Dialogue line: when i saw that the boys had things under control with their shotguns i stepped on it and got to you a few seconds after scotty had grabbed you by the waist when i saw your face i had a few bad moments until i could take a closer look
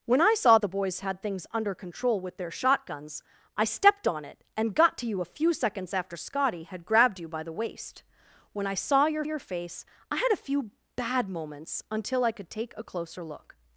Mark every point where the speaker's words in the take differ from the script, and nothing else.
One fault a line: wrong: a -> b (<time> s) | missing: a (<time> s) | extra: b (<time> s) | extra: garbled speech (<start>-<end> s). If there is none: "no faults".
missing: that (0.6 s)
extra: your (9.2 s)